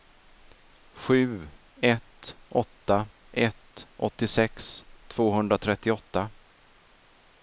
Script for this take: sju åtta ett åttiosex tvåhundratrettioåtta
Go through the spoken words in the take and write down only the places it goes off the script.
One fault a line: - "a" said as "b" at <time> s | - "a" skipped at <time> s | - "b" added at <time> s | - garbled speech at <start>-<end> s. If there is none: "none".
- "ett" added at 1.8 s